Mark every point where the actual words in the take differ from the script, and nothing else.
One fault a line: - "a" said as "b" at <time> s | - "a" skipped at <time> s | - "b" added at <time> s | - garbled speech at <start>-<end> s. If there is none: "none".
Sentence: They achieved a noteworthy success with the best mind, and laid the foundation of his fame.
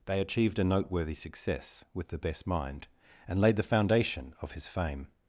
none